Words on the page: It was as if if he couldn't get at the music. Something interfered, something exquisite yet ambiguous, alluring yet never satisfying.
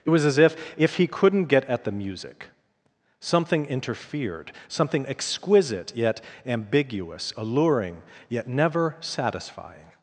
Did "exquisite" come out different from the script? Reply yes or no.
no